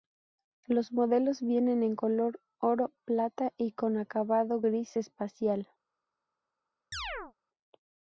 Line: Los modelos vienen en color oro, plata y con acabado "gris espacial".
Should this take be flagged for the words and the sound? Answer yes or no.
yes